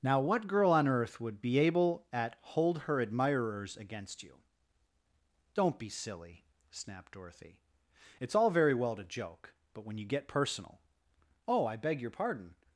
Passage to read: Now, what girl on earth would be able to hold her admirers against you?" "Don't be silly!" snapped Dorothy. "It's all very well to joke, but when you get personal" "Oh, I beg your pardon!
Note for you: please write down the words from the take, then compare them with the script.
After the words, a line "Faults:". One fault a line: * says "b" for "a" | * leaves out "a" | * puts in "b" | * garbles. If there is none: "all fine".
Now, what girl on earth would be able at hold her admirers against you?" "Don't be silly!" snapped Dorothy. "It's all very well to joke, but when you get personal" "Oh, I beg your pardon!
Faults:
* says "at" for "to"